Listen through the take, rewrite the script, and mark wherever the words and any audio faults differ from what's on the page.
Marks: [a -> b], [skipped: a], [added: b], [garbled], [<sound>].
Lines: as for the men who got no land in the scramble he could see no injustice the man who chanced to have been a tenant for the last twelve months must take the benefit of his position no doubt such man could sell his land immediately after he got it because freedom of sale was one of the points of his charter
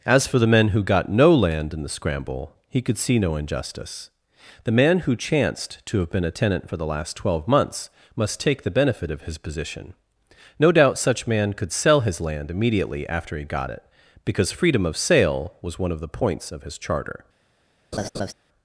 as for the men who got no land in the scramble he could see no injustice the man who chanced to have been a tenant for the last twelve months must take the benefit of his position no doubt such man could sell his land immediately after he got it because freedom of sale was one of the points of his charter [laugh]